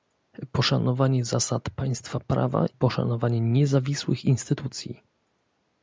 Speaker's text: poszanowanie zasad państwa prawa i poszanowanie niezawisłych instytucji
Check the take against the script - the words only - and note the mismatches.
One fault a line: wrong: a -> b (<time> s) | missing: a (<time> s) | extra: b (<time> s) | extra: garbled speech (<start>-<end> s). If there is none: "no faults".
missing: i (2.6 s)